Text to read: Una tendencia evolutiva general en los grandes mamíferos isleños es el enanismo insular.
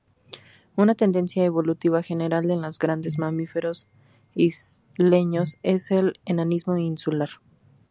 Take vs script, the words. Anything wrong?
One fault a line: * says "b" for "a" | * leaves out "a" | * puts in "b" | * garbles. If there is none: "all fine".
all fine